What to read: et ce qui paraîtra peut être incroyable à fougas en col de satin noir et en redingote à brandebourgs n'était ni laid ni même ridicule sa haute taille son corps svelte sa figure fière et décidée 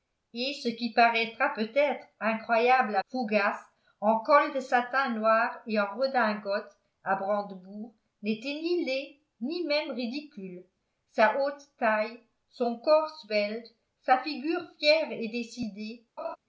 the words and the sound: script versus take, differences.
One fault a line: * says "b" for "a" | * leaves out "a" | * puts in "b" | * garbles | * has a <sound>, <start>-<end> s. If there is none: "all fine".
* has a laugh, 16.2-16.4 s